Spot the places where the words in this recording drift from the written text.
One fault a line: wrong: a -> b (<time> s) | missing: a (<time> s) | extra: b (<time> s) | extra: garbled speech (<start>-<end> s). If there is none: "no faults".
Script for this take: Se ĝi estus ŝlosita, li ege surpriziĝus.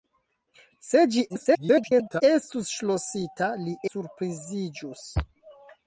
extra: garbled speech (1.3-2.2 s)
missing: ege (3.8 s)